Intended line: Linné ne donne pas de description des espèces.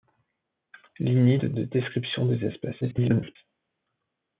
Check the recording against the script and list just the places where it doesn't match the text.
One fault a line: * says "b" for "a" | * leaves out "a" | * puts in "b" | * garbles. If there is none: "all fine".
* leaves out "ne donne pas"
* garbles